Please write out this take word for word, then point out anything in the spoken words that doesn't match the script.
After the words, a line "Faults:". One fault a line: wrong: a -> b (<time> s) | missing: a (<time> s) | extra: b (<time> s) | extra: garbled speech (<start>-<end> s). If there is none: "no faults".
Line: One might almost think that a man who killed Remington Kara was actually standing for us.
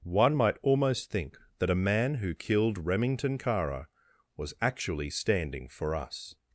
One might almost think that a man who killed Remington Kara was actually standing for us.
Faults:
no faults